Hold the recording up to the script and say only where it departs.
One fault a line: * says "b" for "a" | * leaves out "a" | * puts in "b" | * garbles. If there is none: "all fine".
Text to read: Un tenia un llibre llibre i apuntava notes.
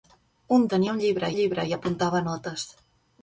all fine